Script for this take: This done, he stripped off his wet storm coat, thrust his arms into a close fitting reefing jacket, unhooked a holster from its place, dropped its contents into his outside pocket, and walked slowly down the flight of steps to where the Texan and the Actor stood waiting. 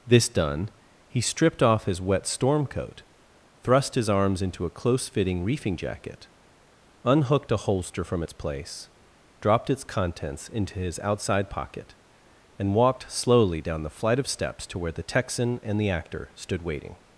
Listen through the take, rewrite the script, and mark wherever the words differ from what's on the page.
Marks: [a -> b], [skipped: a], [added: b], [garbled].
This done, he stripped off his wet storm coat, thrust his arms into a close fitting reefing jacket, unhooked a holster from its place, dropped its contents into his outside pocket, and walked slowly down the flight of steps to where the Texan and the Actor stood waiting.